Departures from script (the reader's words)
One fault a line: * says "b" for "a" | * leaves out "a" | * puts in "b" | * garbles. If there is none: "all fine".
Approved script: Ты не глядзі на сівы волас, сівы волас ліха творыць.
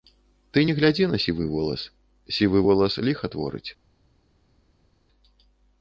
all fine